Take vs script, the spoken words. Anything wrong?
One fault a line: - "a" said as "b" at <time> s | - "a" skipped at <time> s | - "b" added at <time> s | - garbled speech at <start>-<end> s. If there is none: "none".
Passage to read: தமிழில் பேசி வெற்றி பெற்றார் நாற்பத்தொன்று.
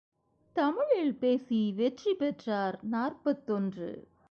none